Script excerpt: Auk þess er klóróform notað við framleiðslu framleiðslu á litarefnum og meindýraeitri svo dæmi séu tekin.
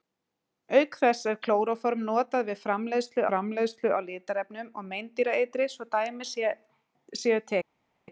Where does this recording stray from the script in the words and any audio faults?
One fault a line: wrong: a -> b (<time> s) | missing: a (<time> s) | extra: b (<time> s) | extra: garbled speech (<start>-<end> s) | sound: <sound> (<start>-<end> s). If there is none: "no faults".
no faults